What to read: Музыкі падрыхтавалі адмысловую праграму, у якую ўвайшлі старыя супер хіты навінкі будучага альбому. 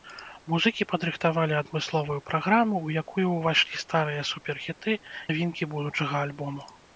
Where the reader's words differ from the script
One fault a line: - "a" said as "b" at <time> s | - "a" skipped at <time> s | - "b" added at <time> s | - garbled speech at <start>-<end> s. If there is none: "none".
none